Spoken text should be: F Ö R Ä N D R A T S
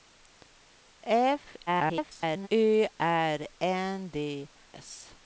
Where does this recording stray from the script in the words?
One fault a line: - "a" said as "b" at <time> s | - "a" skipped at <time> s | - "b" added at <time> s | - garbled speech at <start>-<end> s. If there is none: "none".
- garbled speech at 1.7-2.5 s
- "Ä" skipped at 3.4 s
- "R A T" skipped at 4.5 s